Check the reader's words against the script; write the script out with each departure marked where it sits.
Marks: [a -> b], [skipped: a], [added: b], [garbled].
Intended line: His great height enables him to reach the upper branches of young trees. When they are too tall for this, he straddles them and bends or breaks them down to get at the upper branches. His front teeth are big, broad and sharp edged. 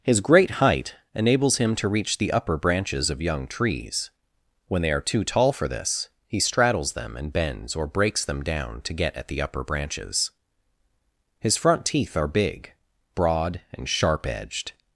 His great height enables him to reach the upper branches of young trees. When they are too tall for this, he straddles them and bends or breaks them down to get at the upper branches. His front teeth are big, broad and sharp edged.